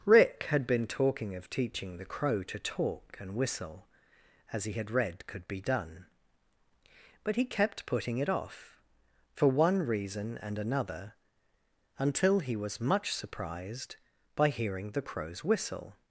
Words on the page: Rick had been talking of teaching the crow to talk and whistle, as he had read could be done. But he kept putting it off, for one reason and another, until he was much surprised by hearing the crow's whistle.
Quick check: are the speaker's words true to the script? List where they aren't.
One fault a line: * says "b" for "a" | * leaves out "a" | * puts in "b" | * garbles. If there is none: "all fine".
all fine